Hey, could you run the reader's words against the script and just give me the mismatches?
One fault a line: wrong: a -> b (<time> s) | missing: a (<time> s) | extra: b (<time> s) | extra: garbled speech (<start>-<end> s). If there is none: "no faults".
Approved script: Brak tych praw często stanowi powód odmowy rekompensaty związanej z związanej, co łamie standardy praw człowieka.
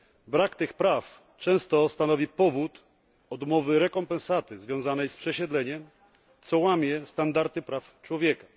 wrong: związanej -> przesiedleniem (5.2 s)